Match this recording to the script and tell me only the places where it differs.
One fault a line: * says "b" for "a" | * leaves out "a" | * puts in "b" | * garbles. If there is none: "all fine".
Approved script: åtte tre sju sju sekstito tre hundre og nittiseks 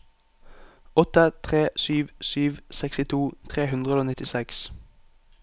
all fine